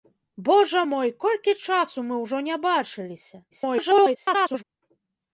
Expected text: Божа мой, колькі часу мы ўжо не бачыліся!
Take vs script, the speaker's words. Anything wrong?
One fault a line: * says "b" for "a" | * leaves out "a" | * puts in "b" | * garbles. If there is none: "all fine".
* garbles